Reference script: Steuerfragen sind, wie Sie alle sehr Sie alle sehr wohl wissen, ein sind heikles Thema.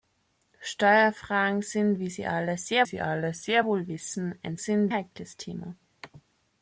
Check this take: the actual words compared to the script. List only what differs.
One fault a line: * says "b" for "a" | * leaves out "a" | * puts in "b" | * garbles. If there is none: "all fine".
all fine